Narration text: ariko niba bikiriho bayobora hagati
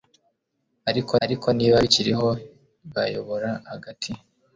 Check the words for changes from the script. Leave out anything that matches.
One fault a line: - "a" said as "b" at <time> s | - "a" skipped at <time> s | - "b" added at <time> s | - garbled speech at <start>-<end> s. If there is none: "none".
- "ariko" added at 1.2 s